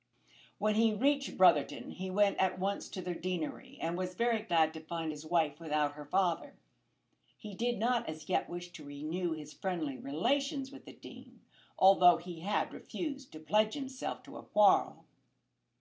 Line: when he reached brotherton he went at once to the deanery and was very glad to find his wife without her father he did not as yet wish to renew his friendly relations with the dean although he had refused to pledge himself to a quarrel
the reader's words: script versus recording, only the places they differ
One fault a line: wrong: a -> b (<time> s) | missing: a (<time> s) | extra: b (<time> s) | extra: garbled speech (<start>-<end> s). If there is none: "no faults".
no faults